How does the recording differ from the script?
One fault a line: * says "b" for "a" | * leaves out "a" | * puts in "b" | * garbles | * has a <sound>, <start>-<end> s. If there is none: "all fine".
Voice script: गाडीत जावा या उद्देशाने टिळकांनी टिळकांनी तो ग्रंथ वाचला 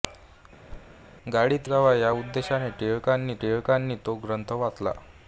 * has a thud, 0.7-1.0 s